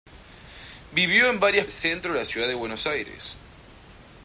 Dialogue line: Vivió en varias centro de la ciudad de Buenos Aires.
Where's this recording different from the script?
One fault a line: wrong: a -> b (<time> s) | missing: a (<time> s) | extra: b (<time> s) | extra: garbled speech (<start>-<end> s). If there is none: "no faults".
no faults